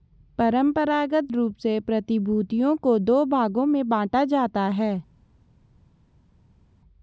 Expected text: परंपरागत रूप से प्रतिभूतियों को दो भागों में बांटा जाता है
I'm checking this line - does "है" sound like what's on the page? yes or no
yes